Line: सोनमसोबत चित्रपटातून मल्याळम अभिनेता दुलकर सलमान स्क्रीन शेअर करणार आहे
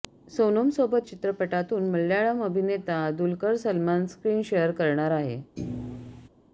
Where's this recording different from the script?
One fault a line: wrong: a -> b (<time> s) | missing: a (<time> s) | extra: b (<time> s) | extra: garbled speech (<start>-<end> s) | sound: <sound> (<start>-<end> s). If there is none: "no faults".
sound: thud (5.6-6.3 s)